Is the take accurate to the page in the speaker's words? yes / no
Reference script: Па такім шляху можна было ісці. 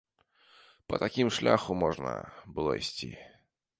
yes